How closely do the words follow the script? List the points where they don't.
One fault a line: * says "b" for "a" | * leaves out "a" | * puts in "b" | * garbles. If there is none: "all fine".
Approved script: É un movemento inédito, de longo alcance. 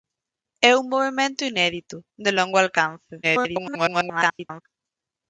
* garbles